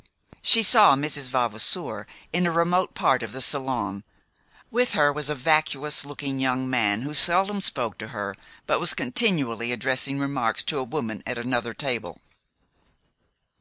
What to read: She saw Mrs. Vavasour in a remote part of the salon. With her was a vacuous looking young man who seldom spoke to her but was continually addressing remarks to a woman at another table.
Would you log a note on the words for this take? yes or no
no